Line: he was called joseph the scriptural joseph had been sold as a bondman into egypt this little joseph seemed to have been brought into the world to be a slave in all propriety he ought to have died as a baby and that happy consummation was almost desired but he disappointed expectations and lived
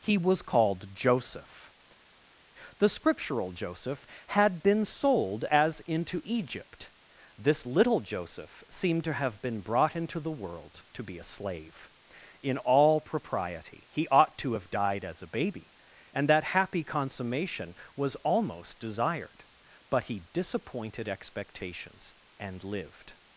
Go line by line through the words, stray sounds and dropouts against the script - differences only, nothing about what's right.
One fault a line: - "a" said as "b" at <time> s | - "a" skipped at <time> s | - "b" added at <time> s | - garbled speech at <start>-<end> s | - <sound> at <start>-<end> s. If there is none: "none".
- "a bondman" skipped at 5.8 s